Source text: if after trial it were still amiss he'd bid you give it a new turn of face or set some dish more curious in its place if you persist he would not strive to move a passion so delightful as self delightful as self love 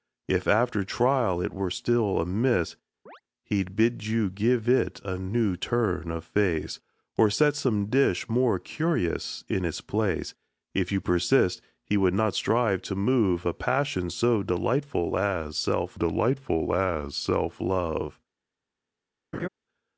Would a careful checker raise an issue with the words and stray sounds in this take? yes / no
yes